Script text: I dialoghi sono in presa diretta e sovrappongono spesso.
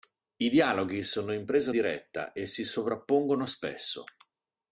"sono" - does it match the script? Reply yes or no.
yes